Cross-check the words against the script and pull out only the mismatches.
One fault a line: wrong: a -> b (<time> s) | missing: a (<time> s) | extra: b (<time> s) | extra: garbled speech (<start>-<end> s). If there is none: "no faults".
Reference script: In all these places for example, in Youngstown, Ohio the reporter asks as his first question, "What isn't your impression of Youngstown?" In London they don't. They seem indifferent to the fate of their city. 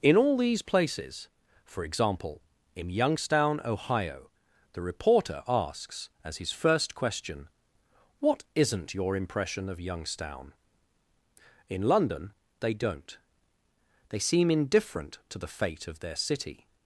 no faults